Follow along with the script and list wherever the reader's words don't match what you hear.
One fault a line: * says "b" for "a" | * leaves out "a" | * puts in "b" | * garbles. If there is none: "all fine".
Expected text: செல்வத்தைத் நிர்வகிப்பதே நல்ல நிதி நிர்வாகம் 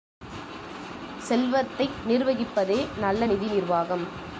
all fine